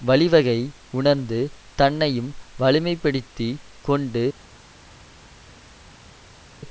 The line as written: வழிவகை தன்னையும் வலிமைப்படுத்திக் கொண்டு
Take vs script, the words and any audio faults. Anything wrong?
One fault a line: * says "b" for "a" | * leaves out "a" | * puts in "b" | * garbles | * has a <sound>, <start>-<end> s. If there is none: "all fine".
* puts in "உணர்ந்து"